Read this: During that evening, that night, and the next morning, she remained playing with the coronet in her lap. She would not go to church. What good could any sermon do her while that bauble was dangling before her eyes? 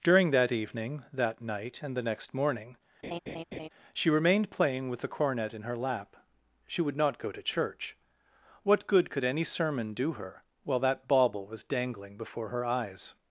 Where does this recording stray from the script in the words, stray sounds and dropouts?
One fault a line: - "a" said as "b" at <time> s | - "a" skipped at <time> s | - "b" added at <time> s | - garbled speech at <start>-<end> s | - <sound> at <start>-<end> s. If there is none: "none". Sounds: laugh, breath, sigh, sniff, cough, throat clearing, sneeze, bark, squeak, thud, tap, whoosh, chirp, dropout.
- laugh at 3.0-3.7 s
- "coronet" said as "cornet" at 5.1 s